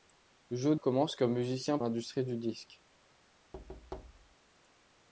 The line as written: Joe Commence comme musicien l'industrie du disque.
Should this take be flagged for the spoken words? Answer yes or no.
no